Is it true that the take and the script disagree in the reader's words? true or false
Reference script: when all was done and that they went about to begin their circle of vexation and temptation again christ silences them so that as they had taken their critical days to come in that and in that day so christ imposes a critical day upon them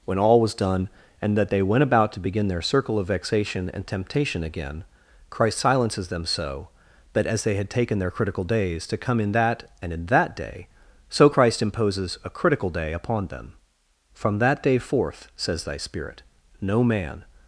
true